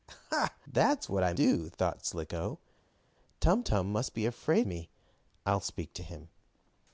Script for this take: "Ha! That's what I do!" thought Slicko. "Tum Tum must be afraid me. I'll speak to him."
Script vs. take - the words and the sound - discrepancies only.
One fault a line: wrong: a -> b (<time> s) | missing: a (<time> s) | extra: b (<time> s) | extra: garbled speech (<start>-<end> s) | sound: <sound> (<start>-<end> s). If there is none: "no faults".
no faults